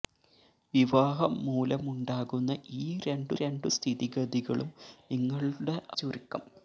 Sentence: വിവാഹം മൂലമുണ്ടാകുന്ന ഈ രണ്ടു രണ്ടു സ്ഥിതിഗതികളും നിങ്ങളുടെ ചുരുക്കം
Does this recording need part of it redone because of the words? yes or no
no